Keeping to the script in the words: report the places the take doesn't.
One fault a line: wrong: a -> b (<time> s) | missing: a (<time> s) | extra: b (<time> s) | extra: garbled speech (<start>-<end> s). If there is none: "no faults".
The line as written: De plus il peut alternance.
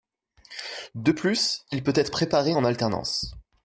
extra: être préparé en (2.0 s)